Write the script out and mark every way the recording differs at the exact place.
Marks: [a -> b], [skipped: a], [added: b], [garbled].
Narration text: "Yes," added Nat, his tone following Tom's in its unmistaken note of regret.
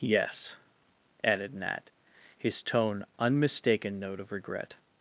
"Yes," added Nat, his tone [skipped: following Tom's in its] unmistaken note of regret.